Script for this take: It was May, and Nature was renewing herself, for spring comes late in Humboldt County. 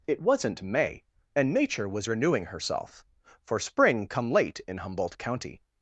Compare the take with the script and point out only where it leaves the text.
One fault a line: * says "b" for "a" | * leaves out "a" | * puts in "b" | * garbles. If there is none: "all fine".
* says "wasn't" for "was"
* says "come" for "comes"